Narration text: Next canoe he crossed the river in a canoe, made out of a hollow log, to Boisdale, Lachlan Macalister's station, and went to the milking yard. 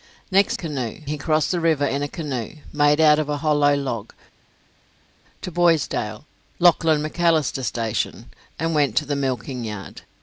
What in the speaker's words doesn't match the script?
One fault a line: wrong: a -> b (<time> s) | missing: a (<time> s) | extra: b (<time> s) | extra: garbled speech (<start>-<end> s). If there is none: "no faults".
no faults